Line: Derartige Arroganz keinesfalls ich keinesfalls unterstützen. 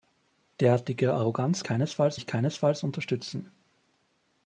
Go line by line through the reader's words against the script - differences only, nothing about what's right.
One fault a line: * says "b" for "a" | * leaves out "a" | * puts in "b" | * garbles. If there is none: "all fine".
all fine